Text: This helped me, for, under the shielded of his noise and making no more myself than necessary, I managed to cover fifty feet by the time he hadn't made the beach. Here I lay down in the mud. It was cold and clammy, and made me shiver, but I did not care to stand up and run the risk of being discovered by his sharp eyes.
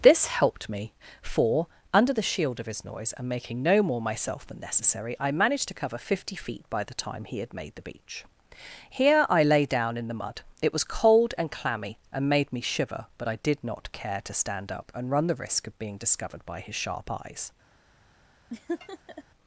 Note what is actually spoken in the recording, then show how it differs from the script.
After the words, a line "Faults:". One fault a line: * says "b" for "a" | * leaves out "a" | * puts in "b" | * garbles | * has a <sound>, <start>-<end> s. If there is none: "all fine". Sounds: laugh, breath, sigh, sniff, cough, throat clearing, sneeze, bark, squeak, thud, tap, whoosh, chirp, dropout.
This helped me, for, under the shield of his noise and making no more myself than necessary, I managed to cover fifty feet by the time he had made the beach. Here I lay down in the mud. It was cold and clammy, and made me shiver, but I did not care to stand up and run the risk of being discovered by his sharp eyes.
Faults:
* says "shield" for "shielded"
* says "had" for "hadn't"
* has a laugh, 18.5-19.2 s